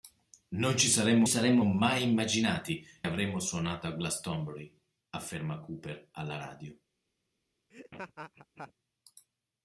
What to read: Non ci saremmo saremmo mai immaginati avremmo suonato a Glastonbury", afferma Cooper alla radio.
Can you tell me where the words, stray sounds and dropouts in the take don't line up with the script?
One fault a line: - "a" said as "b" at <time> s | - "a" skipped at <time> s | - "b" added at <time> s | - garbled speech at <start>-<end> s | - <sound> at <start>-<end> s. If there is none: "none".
- laugh at 7.7-8.7 s